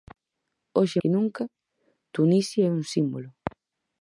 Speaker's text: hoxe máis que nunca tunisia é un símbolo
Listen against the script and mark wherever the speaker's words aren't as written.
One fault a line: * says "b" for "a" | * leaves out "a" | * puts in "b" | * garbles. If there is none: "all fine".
* leaves out "máis"